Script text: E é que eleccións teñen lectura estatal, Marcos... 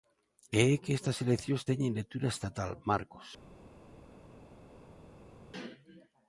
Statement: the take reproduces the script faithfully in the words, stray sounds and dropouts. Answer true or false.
false